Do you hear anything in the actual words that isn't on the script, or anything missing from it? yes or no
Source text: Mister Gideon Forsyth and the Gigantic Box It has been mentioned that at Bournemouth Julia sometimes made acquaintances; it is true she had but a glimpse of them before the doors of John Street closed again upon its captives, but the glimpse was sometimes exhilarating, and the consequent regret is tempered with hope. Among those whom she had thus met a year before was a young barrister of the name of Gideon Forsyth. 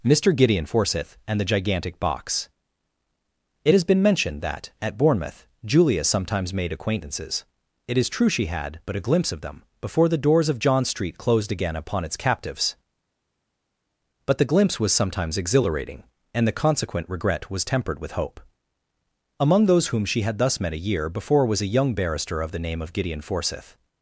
yes